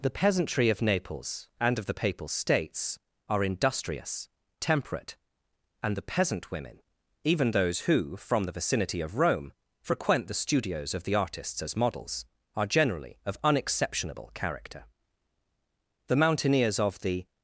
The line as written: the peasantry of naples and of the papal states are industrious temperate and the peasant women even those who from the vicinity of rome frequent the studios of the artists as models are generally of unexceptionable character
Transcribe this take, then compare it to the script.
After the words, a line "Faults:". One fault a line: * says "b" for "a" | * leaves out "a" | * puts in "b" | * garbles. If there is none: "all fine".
the peasantry of naples and of the papal states are industrious temperate and the peasant women even those who from the vicinity of rome frequent the studios of the artists as models are generally of unexceptionable character the mountaineers of the
Faults:
* puts in "the mountaineers of the"